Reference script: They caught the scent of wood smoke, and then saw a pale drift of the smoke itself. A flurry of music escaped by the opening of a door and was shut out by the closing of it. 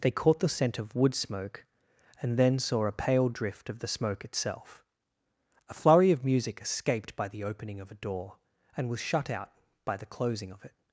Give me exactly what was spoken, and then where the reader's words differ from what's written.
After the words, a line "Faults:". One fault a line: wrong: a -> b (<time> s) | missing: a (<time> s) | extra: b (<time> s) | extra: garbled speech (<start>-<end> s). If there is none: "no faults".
They caught the scent of wood smoke, and then saw a pale drift of the smoke itself. A flurry of music escaped by the opening of a door and was shut out by the closing of it.
Faults:
no faults